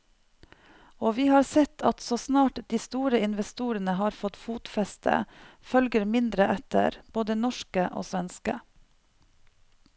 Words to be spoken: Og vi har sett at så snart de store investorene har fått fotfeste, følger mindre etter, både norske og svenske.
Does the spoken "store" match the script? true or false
true